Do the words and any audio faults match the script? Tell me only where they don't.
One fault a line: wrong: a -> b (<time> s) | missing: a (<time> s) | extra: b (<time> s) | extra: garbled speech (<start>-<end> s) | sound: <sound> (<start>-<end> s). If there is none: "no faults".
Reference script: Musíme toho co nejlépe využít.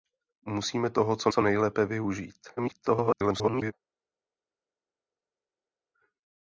extra: co (1.3 s)
extra: garbled speech (2.6-3.7 s)